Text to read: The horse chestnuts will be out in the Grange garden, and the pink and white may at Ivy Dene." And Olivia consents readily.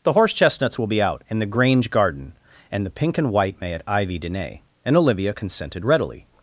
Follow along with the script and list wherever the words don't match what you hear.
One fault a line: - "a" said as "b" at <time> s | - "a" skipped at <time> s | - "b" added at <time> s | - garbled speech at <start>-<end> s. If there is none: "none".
- "consents" said as "consented" at 5.3 s